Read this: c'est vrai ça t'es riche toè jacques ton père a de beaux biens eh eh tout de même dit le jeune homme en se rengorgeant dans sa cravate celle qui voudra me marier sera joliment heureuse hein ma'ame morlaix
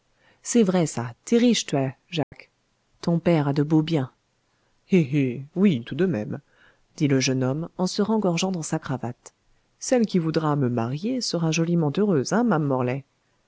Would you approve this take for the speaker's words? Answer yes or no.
no